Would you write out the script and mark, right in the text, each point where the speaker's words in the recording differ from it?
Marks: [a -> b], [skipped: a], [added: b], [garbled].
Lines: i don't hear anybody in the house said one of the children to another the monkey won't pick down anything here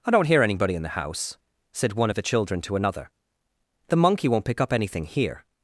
i don't hear anybody in the house said one of the children to another the monkey won't pick [down -> up] anything here